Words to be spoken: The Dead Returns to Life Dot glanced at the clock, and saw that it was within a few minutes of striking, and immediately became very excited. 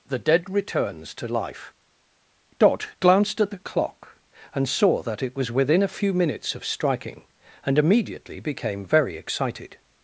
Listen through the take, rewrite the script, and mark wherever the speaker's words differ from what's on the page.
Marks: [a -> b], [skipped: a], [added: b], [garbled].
The Dead Returns to Life Dot glanced at the clock, and saw that it was within a few minutes of striking, and immediately became very excited.